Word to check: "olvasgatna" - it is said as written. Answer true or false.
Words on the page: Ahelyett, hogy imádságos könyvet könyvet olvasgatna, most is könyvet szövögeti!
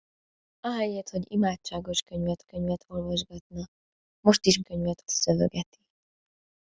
true